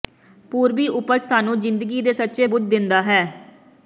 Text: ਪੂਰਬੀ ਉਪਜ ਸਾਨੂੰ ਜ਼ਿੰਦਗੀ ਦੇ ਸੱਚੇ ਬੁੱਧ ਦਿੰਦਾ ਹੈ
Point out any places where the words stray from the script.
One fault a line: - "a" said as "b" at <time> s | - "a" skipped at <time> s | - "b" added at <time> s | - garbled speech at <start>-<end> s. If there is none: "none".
none